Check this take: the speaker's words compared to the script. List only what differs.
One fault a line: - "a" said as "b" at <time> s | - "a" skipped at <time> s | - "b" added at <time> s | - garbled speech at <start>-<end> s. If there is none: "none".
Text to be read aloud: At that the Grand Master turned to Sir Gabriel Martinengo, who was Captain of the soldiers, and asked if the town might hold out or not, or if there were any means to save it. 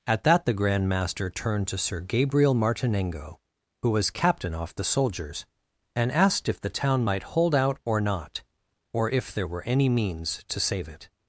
- "of" said as "off" at 4.5 s